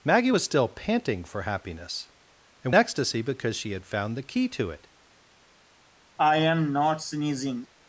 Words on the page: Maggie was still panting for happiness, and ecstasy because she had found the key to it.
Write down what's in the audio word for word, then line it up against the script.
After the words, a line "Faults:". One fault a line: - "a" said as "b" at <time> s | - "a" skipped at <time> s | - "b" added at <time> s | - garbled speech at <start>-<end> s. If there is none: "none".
Maggie was still panting for happiness, and ecstasy because she had found the key to it.
Faults:
none